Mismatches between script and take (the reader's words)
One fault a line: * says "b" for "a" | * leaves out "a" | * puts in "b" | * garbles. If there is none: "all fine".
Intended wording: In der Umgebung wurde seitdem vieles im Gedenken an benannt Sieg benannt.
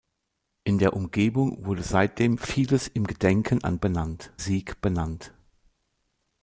all fine